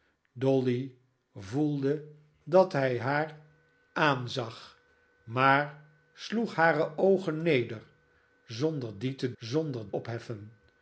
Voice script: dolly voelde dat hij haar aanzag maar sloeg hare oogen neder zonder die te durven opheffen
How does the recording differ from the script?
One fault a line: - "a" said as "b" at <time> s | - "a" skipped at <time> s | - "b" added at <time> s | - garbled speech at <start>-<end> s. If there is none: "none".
- "durven" said as "zonder" at 9.4 s